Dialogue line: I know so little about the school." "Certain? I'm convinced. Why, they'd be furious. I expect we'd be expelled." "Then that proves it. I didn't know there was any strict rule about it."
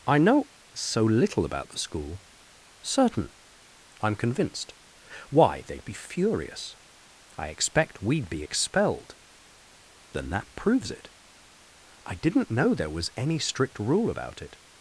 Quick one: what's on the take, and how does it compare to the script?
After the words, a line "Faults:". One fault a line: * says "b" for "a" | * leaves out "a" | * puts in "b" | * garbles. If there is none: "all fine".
I know so little about the school." "Certain? I'm convinced. Why, they'd be furious. I expect we'd be expelled." "Then that proves it. I didn't know there was any strict rule about it."
Faults:
all fine